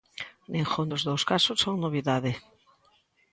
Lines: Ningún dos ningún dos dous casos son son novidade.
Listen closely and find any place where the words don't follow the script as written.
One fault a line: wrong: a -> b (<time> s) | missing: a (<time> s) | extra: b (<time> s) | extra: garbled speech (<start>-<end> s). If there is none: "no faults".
missing: ningún dos (1.0 s)
missing: son (1.7 s)